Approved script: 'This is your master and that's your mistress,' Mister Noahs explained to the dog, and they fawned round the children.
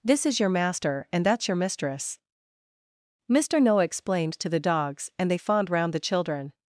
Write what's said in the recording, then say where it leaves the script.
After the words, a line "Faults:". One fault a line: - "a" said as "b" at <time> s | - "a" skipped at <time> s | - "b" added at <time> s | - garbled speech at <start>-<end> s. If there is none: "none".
'This is your master and that's your mistress,' Mister Noah explained to the dogs, and they fawned round the children.
Faults:
- "Noahs" said as "Noah" at 3.6 s
- "dog" said as "dogs" at 4.6 s